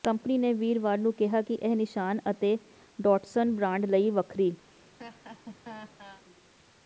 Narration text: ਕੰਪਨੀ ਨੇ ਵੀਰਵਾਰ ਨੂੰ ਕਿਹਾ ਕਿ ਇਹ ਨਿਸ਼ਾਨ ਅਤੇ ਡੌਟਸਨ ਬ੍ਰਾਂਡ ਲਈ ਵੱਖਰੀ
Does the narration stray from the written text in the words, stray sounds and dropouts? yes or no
yes